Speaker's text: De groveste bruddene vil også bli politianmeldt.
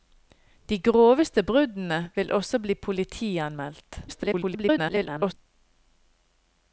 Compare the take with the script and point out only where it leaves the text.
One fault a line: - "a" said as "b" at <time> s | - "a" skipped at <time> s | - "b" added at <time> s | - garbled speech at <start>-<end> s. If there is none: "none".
- garbled speech at 4.1-5.3 s